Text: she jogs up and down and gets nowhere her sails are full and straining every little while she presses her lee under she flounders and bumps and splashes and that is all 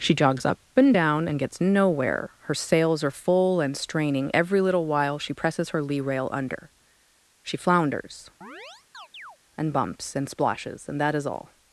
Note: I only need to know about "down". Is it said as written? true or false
true